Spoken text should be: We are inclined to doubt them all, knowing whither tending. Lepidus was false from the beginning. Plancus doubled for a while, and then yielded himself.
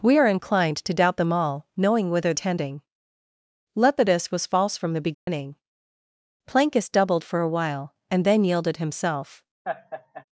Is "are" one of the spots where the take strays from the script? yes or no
no